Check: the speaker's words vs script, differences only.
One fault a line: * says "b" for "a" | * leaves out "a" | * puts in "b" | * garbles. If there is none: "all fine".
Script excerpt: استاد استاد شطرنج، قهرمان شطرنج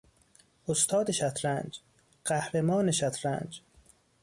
* leaves out "استاد"